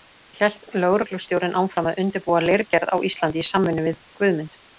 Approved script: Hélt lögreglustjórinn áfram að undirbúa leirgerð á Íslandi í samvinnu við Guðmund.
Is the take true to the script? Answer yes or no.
yes